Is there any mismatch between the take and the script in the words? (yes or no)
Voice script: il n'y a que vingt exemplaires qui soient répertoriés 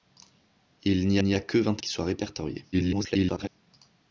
yes